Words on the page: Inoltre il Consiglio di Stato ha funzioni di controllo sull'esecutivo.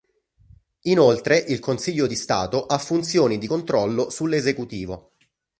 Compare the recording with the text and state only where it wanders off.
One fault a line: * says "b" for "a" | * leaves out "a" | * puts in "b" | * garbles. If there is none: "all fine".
all fine